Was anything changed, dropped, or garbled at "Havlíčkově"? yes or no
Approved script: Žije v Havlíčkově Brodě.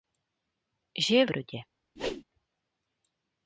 yes